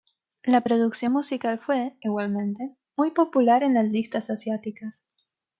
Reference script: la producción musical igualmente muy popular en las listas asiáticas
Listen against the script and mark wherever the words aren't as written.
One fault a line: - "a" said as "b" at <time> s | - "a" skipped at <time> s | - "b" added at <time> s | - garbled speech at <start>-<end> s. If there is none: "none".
- "fue" added at 1.6 s